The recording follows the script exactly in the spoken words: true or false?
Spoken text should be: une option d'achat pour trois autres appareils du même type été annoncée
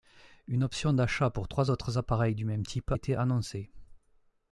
true